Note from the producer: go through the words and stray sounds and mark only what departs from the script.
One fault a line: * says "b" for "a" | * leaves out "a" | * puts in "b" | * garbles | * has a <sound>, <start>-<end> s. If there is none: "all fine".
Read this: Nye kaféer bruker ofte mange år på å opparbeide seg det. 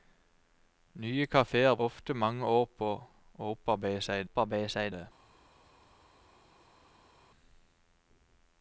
* leaves out "bruker"
* puts in "opparbeide seg"